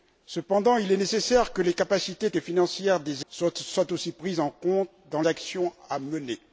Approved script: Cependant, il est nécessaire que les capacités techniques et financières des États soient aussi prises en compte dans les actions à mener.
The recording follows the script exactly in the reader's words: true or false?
false